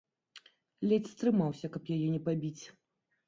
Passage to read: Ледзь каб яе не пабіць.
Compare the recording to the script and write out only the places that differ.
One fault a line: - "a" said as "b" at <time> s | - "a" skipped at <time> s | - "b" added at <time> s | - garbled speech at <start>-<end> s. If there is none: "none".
- "стрымаўся" added at 1.1 s